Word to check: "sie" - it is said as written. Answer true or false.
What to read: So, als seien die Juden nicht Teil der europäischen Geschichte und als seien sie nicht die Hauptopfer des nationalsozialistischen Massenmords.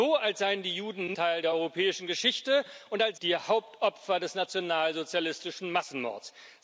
false